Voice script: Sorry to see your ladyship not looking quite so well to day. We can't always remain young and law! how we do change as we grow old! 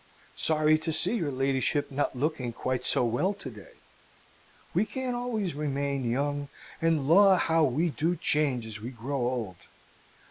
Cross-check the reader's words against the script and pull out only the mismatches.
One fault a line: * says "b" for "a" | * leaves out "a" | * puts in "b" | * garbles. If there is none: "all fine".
all fine